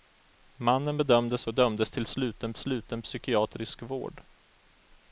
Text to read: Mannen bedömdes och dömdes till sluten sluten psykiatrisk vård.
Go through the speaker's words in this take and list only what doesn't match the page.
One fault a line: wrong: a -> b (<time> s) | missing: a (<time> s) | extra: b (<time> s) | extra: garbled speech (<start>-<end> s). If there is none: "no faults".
no faults